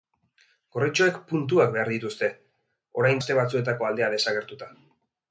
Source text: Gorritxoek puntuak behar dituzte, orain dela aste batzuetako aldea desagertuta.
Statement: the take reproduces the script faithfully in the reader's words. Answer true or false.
false